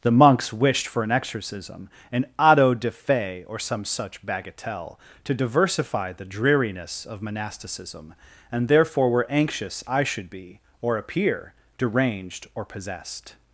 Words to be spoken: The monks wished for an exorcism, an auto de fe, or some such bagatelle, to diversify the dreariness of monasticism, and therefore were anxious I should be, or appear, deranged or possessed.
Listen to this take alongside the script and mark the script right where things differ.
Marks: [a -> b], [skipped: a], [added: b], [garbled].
The monks wished for an exorcism, an auto de fe, or some such bagatelle, to diversify the dreariness of monasticism, and therefore were anxious I should be, or appear, deranged or possessed.